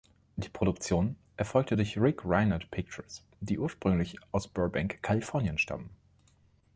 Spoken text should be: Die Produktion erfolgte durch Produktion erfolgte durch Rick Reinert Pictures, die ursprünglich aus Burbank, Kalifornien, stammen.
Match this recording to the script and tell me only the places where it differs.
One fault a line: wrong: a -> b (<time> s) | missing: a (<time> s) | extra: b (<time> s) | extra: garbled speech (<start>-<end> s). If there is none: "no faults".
missing: Produktion erfolgte durch (2.0 s)